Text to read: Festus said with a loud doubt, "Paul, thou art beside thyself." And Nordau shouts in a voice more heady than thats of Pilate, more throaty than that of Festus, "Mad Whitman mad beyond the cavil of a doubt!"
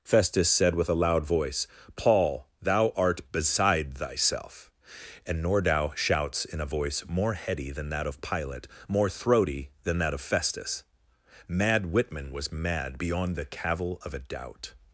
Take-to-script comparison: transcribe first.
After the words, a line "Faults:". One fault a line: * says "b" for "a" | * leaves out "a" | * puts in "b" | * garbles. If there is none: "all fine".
Festus said with a loud voice, "Paul, thou art beside thyself." And Nordau shouts in a voice more heady than that of Pilate, more throaty than that of Festus, "Mad Whitman was mad beyond the cavil of a doubt!"
Faults:
* says "voice" for "doubt"
* says "that" for "thats"
* puts in "was"